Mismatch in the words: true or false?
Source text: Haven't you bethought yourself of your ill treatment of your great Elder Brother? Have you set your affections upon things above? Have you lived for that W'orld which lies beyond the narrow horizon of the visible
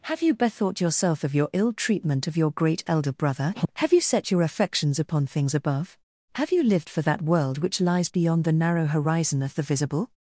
true